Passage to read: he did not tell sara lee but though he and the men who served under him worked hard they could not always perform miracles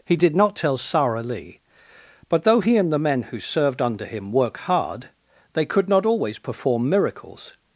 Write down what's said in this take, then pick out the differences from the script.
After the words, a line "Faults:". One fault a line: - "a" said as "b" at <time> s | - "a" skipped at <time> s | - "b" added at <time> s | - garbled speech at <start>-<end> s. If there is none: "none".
he did not tell sara lee but though he and the men who served under him work hard they could not always perform miracles
Faults:
- "worked" said as "work" at 4.3 s